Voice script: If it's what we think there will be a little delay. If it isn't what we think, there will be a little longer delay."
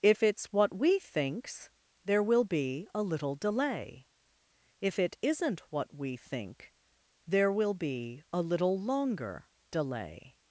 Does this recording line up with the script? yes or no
no